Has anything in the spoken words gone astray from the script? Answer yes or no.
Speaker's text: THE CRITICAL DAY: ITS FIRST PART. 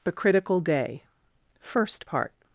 yes